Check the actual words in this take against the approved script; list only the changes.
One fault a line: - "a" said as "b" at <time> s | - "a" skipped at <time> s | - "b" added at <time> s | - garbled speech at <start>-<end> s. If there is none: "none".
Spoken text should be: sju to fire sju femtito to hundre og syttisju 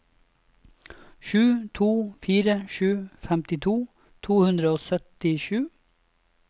none